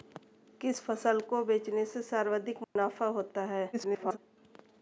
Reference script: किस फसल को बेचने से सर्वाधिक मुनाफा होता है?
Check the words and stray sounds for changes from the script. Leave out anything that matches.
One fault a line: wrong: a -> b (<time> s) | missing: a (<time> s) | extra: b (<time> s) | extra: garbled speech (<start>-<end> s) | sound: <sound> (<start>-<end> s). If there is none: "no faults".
sound: dropout (2.6-2.8 s)
extra: garbled speech (3.7-4.2 s)